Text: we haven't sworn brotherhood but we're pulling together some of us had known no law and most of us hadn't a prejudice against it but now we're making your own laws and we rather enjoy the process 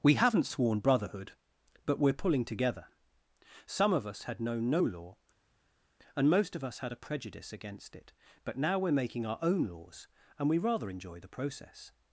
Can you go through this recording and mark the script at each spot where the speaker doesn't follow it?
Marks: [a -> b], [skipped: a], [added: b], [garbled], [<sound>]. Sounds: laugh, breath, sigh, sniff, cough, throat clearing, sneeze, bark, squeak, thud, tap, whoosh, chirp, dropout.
we haven't sworn brotherhood but we're pulling together some of us had known no law and most of us [hadn't -> had] a prejudice against it but now we're making [your -> our] own laws and we rather enjoy the process